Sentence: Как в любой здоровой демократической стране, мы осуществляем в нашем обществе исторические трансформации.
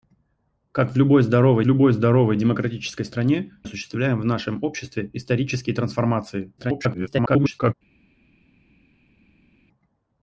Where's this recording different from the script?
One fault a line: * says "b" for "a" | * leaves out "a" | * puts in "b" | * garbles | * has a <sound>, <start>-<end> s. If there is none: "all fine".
* puts in "любой здоровой"
* leaves out "мы"
* garbles